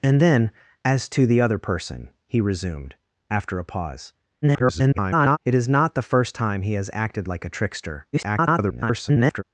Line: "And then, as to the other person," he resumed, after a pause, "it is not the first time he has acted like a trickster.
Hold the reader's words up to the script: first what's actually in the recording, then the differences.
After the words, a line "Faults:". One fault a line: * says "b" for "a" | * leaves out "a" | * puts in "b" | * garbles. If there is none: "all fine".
"And then, as to the other person," he resumed, after a pause, [garbled] "it is not the first time he has acted like a trickster. [garbled]
Faults:
* garbles
* garbles